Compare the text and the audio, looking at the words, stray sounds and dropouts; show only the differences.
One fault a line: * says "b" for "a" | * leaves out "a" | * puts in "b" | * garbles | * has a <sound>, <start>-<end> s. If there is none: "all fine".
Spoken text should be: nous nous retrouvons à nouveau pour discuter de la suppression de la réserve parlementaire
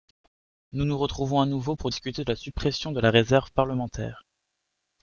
all fine